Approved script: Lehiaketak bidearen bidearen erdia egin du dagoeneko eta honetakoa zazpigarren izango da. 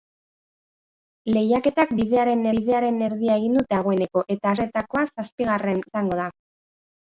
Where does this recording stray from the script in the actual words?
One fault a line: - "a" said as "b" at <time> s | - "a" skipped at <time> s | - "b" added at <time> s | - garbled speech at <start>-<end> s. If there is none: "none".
none